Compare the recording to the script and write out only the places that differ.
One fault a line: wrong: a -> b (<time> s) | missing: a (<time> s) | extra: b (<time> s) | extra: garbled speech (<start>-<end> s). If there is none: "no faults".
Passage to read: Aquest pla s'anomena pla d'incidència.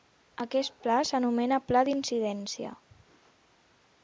no faults